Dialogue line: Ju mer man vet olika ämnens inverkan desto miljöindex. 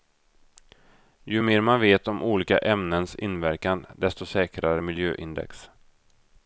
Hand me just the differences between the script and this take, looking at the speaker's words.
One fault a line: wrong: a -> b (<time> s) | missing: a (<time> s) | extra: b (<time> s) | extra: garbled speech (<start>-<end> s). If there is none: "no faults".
extra: om (2.1 s)
extra: säkrare (4.2 s)